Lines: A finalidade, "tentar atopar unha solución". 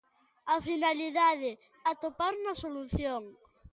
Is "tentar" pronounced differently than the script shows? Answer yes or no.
yes